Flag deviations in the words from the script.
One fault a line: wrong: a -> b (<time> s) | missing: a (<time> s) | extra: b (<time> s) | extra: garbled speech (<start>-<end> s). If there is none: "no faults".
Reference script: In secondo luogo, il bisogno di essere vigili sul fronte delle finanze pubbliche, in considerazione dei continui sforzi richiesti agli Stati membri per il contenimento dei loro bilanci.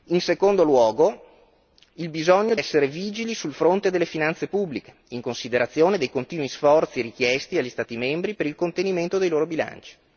missing: di (2.5 s)